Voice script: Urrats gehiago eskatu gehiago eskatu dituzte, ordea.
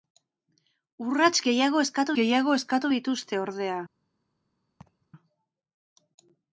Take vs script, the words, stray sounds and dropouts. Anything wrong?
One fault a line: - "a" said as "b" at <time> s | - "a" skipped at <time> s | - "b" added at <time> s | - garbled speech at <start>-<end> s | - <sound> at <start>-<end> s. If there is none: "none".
- laugh at 4.8-5.1 s